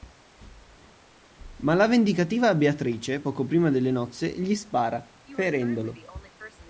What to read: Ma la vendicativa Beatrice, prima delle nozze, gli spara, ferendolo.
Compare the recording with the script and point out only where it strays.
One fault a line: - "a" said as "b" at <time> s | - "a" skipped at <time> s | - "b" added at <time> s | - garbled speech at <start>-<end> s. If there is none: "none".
- "poco" added at 3.2 s